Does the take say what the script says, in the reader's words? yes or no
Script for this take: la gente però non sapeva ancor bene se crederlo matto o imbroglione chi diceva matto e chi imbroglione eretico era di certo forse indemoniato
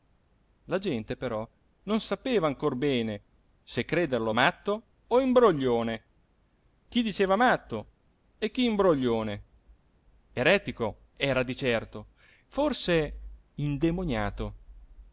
yes